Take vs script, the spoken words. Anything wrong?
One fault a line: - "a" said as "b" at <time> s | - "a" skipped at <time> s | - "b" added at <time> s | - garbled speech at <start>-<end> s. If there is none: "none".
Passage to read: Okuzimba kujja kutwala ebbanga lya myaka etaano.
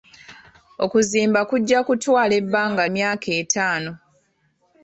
- "lya" skipped at 2.8 s